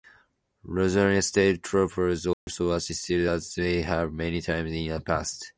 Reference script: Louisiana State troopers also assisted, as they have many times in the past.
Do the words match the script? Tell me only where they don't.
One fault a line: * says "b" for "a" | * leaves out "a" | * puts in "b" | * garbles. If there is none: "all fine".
all fine